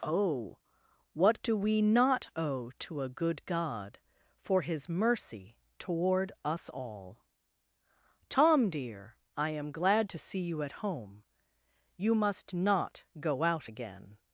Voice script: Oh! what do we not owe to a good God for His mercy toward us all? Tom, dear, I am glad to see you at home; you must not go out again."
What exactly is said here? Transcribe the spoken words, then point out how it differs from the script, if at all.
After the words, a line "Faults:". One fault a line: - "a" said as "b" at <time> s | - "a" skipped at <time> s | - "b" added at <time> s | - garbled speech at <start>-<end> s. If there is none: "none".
Oh! what do we not owe to a good God for His mercy toward us all? Tom, dear, I am glad to see you at home; you must not go out again."
Faults:
none